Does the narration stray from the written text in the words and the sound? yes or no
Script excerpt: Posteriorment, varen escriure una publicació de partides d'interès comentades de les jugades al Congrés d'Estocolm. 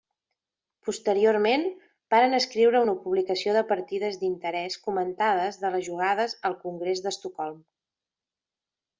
no